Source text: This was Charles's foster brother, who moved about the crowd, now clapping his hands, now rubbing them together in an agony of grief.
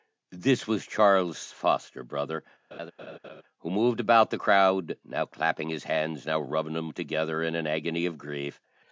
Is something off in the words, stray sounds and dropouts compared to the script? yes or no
yes